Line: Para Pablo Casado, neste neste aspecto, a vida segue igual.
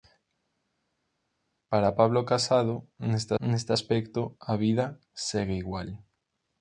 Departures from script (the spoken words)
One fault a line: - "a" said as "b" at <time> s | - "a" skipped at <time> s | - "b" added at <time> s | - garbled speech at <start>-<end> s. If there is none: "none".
none